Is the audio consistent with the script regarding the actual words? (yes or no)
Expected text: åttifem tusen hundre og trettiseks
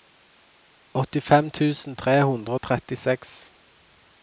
no